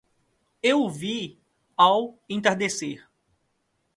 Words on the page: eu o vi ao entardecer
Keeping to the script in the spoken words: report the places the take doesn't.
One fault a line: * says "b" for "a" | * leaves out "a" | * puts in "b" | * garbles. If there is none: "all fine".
all fine